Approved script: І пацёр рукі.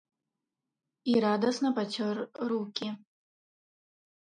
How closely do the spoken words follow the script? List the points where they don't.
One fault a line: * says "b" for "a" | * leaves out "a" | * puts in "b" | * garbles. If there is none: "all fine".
* puts in "радасна"